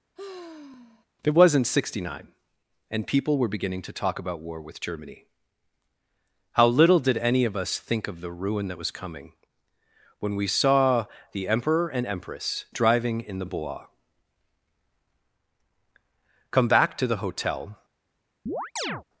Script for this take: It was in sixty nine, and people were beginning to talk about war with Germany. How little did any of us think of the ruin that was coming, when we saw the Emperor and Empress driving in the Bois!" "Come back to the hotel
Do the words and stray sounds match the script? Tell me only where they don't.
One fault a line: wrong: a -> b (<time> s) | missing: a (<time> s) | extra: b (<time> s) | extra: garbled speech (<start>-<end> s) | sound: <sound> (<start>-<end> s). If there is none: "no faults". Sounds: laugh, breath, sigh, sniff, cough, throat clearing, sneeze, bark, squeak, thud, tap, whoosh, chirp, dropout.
sound: sigh (0.2-1.1 s)
sound: chirp (18.5-19.0 s)